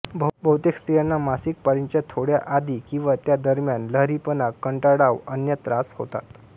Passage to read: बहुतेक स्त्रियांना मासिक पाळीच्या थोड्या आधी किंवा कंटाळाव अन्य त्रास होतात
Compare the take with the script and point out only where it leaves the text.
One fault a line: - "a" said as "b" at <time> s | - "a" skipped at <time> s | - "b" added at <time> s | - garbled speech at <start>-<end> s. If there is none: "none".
- "त्या दरम्यान लहरीपणा" added at 3.2 s